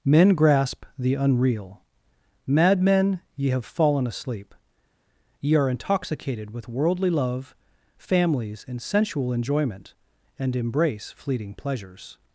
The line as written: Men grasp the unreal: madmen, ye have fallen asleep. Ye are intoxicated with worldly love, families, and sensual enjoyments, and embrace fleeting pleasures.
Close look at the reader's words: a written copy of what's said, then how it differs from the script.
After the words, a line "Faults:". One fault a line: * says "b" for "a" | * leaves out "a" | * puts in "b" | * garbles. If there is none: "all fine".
Men grasp the unreal: madmen, ye have fallen asleep. Ye are intoxicated with worldly love, families, and sensual enjoyment, and embrace fleeting pleasures.
Faults:
* says "enjoyment" for "enjoyments"